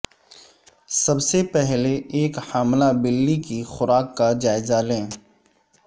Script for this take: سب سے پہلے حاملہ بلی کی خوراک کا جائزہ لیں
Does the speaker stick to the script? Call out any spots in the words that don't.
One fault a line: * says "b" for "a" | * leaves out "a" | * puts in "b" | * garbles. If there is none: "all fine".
* puts in "ایک"